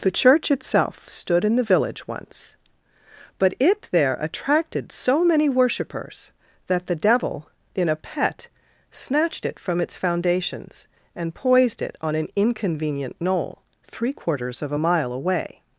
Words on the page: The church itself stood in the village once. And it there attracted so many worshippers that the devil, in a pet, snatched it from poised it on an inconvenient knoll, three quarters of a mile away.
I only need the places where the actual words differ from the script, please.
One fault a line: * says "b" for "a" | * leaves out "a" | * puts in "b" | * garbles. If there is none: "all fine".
* says "But" for "And"
* puts in "its foundations and"